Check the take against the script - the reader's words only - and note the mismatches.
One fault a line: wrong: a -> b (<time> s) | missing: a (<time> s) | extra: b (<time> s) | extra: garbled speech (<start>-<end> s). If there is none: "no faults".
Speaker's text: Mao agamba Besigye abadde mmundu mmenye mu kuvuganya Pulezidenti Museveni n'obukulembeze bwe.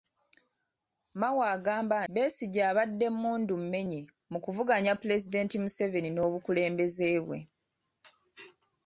no faults